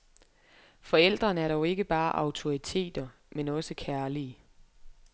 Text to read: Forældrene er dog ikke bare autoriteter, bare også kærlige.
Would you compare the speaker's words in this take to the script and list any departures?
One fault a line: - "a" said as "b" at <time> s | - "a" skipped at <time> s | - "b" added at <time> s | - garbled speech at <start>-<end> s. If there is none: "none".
- "bare" said as "men" at 3.3 s